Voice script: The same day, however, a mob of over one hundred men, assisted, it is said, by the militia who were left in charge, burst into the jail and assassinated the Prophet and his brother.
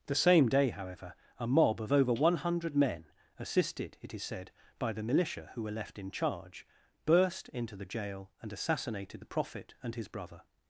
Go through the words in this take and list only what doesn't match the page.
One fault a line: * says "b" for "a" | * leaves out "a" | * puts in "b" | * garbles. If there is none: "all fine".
all fine